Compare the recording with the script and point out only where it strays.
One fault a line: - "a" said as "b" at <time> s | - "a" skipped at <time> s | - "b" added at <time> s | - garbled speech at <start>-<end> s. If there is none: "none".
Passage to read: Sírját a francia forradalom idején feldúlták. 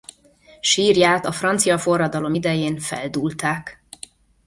none